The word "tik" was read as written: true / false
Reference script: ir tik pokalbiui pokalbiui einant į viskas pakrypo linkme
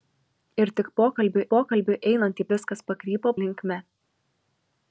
true